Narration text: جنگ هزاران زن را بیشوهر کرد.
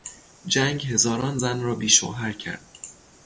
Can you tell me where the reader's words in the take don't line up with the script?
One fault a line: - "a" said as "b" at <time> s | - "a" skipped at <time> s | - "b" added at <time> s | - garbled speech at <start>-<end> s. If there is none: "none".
none